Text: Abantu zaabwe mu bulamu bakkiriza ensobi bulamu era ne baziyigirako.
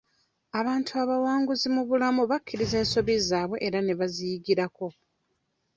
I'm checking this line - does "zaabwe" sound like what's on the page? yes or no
no